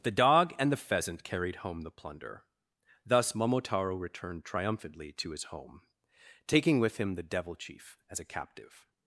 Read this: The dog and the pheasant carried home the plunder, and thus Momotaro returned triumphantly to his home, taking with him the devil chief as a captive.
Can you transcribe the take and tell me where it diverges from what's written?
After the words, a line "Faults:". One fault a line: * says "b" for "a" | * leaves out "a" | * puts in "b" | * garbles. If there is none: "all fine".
The dog and the pheasant carried home the plunder, thus Momotaro returned triumphantly to his home, taking with him the devil chief as a captive.
Faults:
* leaves out "and"